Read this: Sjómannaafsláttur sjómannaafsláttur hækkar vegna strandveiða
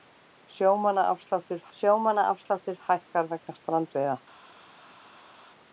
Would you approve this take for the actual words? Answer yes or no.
yes